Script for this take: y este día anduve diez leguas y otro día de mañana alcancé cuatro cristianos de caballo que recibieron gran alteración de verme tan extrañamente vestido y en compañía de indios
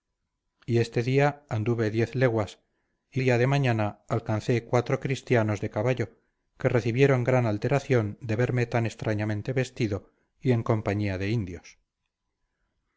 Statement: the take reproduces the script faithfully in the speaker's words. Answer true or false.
false